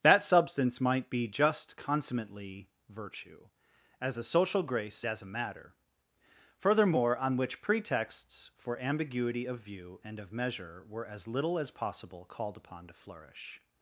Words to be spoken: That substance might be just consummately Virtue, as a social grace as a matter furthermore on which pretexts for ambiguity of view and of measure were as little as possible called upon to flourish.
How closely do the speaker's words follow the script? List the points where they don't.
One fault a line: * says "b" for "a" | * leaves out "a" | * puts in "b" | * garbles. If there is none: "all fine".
all fine